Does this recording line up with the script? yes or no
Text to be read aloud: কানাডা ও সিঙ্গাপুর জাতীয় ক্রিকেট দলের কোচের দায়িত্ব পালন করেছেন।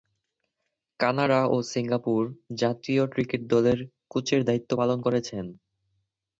yes